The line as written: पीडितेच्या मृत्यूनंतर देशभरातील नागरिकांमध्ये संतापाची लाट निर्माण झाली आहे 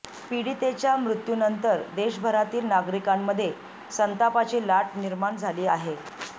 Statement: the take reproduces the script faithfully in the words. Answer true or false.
true